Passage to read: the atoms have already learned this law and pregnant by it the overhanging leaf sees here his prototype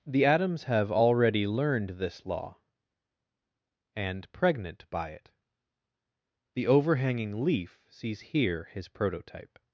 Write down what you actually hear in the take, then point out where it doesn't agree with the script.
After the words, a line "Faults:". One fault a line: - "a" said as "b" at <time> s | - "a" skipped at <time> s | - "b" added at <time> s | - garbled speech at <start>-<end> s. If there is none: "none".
the atoms have already learned this law and pregnant by it the overhanging leaf sees here his prototype
Faults:
none